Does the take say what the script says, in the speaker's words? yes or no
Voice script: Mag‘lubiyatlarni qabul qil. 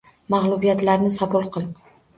yes